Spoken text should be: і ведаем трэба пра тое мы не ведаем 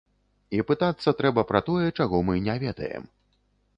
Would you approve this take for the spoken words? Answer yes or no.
no